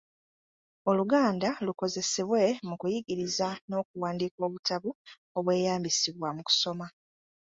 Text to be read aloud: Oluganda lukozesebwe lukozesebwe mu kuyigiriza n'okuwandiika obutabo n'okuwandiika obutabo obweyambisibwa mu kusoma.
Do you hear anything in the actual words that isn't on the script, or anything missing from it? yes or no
yes